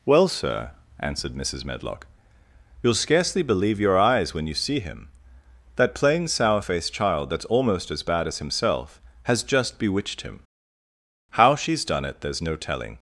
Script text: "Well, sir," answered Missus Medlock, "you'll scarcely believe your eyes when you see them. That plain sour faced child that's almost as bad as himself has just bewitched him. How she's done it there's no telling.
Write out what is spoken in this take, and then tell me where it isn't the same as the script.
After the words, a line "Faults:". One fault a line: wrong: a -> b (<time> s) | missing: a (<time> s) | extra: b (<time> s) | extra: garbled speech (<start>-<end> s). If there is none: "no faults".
"Well, sir," answered Missus Medlock, "you'll scarcely believe your eyes when you see him. That plain sour faced child that's almost as bad as himself has just bewitched him. How she's done it there's no telling.
Faults:
wrong: them -> him (4.8 s)